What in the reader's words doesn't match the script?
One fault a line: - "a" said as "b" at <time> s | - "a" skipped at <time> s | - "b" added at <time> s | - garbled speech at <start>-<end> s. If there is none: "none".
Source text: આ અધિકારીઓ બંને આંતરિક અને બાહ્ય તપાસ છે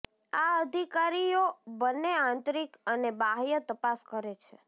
- "કરે" added at 4.1 s